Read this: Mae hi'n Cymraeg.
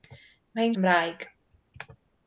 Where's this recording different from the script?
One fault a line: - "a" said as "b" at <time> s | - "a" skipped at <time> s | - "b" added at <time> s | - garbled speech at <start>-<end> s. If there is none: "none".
none